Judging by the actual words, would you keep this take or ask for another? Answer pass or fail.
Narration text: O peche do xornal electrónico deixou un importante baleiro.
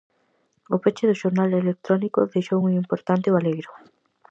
pass